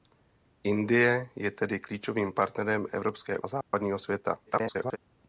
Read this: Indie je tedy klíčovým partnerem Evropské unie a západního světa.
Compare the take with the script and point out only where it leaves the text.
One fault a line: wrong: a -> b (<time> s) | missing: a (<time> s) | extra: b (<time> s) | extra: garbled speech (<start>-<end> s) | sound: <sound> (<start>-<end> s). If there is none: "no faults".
missing: unie (3.4 s)
sound: dropout (3.6-3.7 s)
extra: garbled speech (4.5-5.0 s)